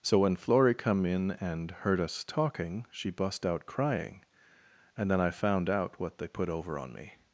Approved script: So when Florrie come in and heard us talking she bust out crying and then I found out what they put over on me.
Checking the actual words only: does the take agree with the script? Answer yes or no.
yes